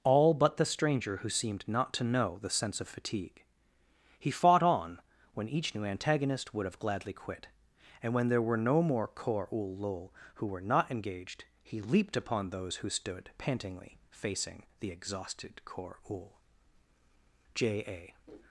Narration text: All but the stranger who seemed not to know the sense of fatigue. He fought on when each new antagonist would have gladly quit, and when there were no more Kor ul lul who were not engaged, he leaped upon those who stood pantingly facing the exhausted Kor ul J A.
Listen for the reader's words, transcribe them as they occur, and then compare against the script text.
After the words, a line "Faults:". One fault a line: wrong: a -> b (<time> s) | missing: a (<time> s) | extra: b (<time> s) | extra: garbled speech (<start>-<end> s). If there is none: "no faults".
All but the stranger who seemed not to know the sense of fatigue. He fought on when each new antagonist would have gladly quit, and when there were no more Kor ul lul who were not engaged, he leaped upon those who stood pantingly facing the exhausted Kor ul J A.
Faults:
no faults